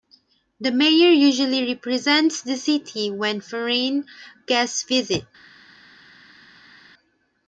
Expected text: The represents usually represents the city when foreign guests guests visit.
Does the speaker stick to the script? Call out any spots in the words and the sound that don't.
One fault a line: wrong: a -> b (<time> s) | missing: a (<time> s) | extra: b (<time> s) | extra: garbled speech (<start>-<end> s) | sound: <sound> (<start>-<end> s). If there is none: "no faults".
wrong: represents -> mayor (0.7 s)
missing: guests (4.8 s)